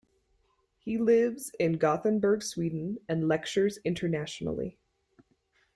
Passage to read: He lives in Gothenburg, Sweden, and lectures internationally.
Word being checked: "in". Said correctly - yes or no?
yes